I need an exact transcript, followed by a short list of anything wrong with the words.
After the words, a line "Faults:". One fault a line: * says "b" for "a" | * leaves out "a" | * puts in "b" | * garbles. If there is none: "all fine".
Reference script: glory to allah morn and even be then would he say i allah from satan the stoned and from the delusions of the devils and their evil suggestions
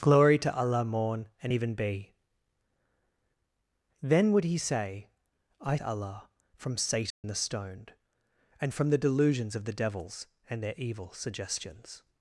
glory to allah morn and even be then would he say i allah from satan the stoned and from the delusions of the devils and their evil suggestions
Faults:
all fine